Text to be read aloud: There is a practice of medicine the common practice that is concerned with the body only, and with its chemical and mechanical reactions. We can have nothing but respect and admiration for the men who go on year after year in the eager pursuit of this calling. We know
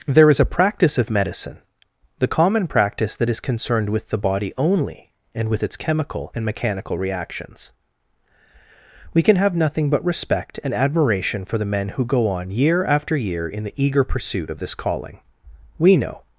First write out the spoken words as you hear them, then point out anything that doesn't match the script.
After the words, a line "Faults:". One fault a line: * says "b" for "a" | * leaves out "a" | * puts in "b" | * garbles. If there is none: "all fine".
There is a practice of medicine the common practice that is concerned with the body only, and with its chemical and mechanical reactions. We can have nothing but respect and admiration for the men who go on year after year in the eager pursuit of this calling. We know
Faults:
all fine